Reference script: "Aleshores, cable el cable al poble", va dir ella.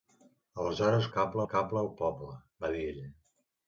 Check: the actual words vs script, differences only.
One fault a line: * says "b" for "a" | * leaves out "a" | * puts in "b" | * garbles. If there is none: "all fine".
all fine